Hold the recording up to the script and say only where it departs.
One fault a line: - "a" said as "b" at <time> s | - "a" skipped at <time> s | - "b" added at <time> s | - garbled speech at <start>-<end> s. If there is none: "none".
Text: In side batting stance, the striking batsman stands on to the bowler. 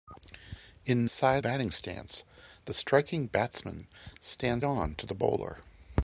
none